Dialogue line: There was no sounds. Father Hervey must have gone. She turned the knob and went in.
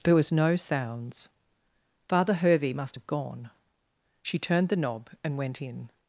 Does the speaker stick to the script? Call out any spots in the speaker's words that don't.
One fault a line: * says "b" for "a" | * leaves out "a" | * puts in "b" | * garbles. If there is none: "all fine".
all fine